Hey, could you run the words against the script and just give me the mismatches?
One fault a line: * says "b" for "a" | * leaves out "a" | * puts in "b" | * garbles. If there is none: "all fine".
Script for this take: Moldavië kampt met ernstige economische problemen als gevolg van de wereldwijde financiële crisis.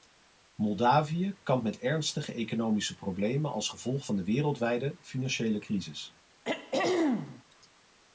all fine